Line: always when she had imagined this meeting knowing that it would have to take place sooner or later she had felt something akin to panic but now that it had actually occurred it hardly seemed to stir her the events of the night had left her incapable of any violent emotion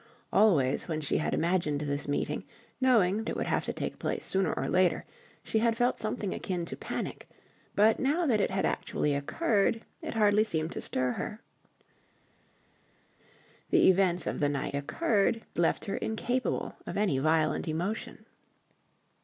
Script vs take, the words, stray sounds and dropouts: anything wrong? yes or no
yes